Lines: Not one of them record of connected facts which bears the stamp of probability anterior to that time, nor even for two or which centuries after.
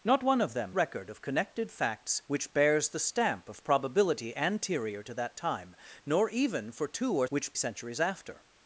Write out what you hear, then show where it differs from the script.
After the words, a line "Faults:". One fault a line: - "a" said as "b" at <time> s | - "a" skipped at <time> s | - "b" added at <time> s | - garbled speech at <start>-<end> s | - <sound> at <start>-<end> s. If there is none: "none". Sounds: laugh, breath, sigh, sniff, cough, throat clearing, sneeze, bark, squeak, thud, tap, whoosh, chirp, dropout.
Not one of them record of connected facts which bears the stamp of probability anterior to that time, nor even for two or which centuries after.
Faults:
none